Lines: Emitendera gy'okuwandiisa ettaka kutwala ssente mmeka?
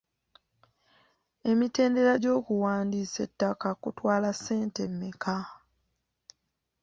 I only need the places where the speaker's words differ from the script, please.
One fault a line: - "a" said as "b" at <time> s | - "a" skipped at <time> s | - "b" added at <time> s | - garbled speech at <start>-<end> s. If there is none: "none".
none